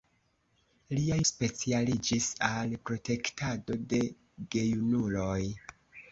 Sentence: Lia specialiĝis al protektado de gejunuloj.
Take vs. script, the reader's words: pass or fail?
pass